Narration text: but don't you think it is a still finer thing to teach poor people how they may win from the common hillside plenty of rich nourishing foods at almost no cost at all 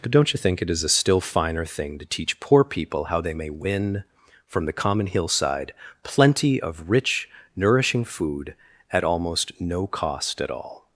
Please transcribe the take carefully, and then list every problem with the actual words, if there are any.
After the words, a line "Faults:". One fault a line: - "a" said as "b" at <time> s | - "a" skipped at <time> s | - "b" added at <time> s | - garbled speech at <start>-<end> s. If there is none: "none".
but don't you think it is a still finer thing to teach poor people how they may win from the common hillside plenty of rich nourishing food at almost no cost at all
Faults:
- "foods" said as "food" at 8.0 s